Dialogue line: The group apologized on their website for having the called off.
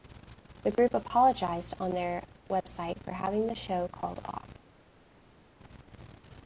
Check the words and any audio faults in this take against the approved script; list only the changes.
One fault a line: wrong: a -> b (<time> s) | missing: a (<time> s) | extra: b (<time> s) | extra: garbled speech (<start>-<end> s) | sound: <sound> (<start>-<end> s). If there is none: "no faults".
extra: show (3.5 s)